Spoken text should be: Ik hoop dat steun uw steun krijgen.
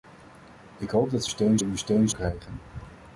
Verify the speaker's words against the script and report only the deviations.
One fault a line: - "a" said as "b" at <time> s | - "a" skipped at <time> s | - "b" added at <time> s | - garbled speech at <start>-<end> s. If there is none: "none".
none